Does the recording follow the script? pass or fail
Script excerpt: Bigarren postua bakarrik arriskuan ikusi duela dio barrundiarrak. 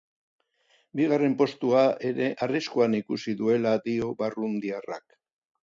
fail